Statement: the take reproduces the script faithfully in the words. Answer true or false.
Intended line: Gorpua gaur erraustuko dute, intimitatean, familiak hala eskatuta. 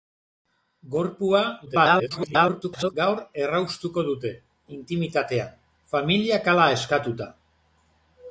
false